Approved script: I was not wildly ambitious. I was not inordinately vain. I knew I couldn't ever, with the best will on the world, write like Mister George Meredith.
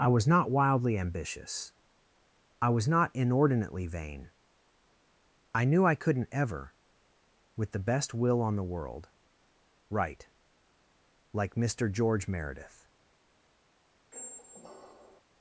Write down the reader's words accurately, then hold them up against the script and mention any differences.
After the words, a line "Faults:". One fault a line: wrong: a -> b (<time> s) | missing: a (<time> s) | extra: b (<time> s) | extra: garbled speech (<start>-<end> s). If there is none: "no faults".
I was not wildly ambitious. I was not inordinately vain. I knew I couldn't ever, with the best will on the world, write like Mister George Meredith.
Faults:
no faults